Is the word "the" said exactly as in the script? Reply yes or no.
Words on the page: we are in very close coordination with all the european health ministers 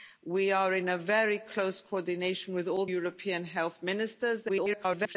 no